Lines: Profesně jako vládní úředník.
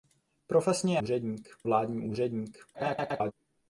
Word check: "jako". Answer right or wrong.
wrong